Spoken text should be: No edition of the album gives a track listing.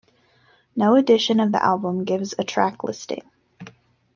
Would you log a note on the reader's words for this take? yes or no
no